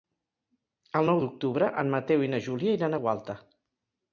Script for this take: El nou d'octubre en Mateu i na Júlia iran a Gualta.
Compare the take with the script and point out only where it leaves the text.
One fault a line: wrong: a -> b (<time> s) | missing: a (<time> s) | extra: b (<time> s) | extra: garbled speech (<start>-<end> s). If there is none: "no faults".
no faults